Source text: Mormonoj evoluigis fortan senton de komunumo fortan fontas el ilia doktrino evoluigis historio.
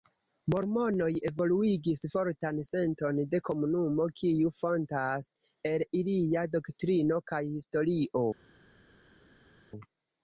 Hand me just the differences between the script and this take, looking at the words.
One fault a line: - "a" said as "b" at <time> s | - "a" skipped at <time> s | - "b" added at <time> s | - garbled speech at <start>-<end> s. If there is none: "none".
- "fortan" said as "kiu" at 4.2 s
- "evoluigis" said as "kaj" at 7.3 s